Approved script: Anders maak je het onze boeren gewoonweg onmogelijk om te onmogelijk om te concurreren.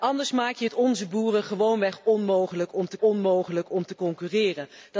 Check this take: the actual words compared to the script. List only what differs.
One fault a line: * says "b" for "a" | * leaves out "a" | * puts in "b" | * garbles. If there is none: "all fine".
all fine